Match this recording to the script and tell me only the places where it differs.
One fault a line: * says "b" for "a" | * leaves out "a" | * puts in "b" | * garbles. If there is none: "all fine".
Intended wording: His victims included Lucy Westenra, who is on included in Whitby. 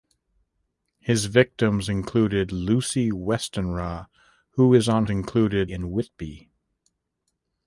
all fine